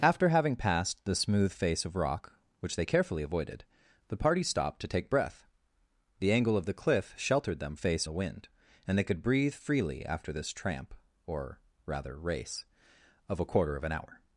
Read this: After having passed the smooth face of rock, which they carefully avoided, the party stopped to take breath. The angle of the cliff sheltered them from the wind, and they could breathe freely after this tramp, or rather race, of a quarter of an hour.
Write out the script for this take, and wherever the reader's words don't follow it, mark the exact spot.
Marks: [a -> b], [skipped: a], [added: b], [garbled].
After having passed the smooth face of rock, which they carefully avoided, the party stopped to take breath. The angle of the cliff sheltered them [from -> face] the wind, and they could breathe freely after this tramp, or rather race, of a quarter of an hour.